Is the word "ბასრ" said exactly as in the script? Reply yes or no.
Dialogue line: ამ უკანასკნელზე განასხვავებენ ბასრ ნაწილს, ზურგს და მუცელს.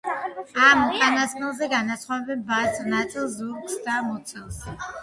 yes